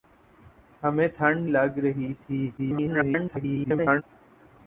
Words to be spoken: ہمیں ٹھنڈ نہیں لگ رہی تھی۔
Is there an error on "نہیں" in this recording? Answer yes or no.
yes